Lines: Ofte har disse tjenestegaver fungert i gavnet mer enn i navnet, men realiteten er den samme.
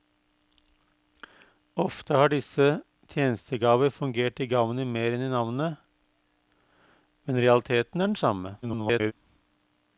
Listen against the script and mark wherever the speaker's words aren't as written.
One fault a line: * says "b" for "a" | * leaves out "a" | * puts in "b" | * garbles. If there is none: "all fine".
* garbles